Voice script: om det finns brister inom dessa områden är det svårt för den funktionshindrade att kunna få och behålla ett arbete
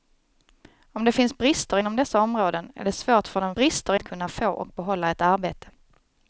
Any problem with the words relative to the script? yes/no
yes